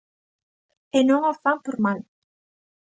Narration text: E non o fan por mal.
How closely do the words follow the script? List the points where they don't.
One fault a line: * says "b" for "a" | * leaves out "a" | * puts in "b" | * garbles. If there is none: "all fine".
all fine